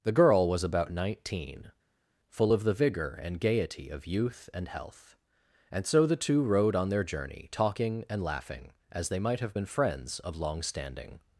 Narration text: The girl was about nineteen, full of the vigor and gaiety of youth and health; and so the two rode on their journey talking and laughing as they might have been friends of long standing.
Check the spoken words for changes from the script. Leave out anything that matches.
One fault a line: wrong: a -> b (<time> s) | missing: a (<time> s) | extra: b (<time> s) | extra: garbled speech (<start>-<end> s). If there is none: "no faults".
no faults